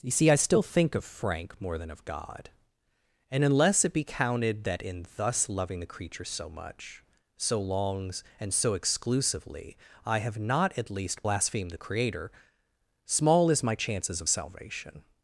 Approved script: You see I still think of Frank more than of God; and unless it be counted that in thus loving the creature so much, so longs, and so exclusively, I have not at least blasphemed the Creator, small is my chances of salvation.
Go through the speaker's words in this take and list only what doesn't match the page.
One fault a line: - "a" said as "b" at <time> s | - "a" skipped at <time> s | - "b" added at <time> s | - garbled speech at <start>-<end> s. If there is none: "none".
none